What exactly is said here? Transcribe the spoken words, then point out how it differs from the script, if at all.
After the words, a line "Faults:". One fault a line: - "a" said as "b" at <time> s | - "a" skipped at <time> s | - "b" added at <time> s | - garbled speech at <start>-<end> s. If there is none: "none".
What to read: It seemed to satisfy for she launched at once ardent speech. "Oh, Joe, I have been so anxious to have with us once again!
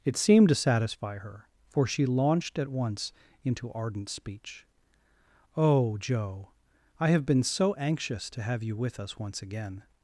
It seemed to satisfy her, for she launched at once into ardent speech. "Oh, Joe, I have been so anxious to have you with us once again!
Faults:
- "her" added at 1.2 s
- "into" added at 3.4 s
- "you" added at 8.6 s